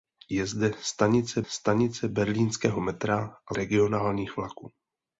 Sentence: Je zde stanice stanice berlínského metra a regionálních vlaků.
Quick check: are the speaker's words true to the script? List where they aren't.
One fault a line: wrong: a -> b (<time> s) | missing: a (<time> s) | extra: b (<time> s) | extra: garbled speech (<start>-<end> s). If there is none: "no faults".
no faults